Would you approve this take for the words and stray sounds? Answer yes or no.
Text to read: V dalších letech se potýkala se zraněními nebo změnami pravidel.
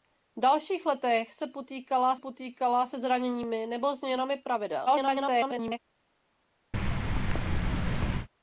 no